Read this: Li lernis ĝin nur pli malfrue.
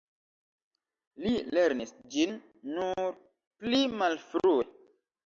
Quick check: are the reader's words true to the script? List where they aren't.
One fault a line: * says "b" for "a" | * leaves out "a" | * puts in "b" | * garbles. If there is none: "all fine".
all fine